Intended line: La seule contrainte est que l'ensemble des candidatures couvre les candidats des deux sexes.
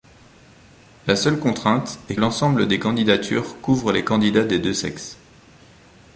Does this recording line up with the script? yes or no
no